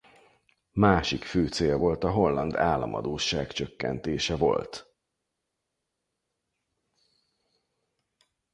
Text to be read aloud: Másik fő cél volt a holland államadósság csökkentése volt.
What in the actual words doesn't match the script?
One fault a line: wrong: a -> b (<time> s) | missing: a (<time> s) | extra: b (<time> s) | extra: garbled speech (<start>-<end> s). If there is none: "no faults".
no faults